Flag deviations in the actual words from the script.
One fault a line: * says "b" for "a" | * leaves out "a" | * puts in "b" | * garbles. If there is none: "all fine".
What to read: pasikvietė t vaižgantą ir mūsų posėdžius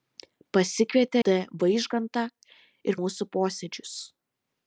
all fine